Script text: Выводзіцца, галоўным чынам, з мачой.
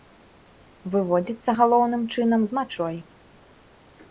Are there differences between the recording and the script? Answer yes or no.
no